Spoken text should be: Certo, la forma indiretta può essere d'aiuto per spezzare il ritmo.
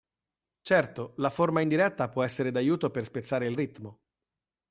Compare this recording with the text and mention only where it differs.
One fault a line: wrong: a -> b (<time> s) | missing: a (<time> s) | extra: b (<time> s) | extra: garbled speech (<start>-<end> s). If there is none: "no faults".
no faults